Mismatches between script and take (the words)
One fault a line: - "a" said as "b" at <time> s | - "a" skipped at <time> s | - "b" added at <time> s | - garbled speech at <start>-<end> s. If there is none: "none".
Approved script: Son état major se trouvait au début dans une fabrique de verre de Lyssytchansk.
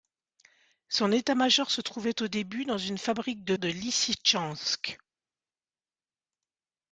- "verre" skipped at 3.5 s